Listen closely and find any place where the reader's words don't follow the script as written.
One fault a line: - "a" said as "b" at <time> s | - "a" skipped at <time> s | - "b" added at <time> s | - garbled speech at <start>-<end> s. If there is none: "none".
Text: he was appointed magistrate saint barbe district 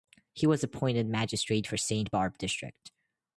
- "for" added at 1.7 s